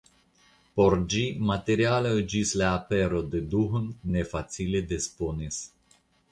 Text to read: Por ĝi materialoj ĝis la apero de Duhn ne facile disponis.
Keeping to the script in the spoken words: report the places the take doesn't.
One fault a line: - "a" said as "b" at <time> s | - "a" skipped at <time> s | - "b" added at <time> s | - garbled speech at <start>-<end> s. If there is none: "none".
none